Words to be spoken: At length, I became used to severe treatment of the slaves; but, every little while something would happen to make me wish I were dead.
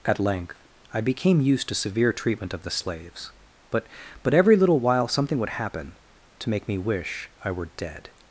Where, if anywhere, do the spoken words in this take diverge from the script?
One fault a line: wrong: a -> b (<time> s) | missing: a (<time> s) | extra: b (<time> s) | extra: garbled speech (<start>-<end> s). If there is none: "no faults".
extra: but (4.2 s)